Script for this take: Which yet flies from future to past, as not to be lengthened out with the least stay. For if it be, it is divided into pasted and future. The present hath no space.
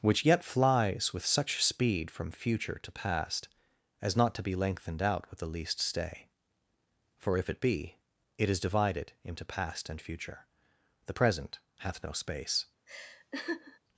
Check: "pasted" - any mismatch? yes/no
yes